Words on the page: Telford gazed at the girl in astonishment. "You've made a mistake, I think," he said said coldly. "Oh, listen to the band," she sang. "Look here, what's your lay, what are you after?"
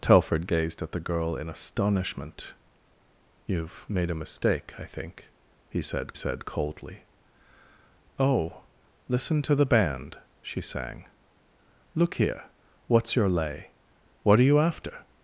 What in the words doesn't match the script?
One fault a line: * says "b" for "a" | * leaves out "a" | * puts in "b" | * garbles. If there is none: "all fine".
all fine